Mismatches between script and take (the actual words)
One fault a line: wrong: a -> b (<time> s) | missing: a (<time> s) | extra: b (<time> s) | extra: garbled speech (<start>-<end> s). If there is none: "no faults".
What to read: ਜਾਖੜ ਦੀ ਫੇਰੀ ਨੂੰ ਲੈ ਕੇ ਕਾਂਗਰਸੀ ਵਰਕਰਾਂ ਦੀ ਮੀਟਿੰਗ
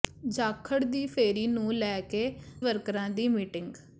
missing: ਕਾਂਗਰਸੀ (2.3 s)